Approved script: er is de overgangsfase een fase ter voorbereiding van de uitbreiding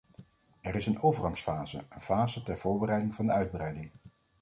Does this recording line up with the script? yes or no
no